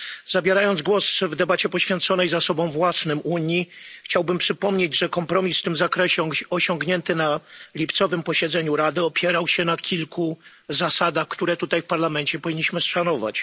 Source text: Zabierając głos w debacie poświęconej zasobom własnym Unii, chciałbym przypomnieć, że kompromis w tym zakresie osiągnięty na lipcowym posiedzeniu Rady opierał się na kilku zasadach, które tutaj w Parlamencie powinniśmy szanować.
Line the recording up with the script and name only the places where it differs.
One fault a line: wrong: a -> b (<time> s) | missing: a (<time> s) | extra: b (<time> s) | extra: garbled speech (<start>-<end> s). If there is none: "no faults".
no faults